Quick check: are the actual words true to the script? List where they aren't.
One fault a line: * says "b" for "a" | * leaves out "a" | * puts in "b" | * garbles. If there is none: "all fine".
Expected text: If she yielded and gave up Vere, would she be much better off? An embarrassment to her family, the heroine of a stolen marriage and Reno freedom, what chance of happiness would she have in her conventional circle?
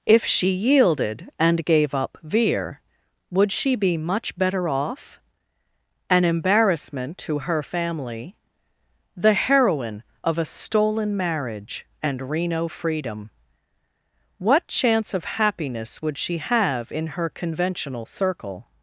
all fine